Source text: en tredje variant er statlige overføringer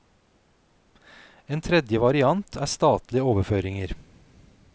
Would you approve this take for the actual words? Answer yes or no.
yes